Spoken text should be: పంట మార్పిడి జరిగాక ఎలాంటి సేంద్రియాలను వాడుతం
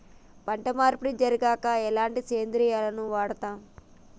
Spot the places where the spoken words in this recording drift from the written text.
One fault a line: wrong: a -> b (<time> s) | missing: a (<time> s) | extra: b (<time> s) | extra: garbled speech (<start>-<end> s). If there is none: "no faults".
no faults